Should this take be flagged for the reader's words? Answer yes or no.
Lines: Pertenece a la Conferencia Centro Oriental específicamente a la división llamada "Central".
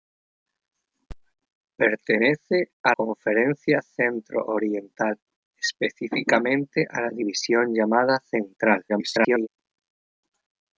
yes